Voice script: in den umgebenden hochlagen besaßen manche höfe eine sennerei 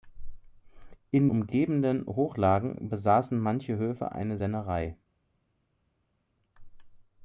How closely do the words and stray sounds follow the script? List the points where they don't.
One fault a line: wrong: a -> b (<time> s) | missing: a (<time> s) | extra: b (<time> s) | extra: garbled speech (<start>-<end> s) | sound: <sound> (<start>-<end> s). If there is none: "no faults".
missing: den (1.3 s)